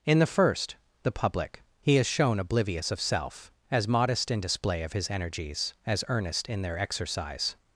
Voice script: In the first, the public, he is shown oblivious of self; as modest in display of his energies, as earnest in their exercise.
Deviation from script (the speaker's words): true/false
false